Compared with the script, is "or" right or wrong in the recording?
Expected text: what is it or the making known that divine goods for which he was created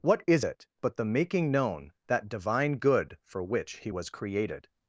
wrong